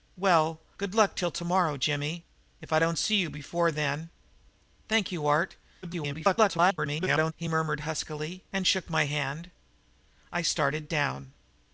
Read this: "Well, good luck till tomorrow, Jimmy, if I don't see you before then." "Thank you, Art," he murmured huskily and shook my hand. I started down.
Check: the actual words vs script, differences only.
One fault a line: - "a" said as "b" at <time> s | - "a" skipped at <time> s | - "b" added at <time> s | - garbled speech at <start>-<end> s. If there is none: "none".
- garbled speech at 5.8-7.3 s